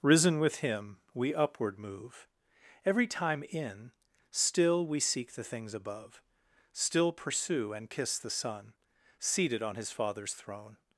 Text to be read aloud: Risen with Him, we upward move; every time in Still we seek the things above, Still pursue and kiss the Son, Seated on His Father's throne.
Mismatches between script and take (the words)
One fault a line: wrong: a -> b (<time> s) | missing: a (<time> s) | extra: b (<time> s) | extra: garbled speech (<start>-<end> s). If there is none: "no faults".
no faults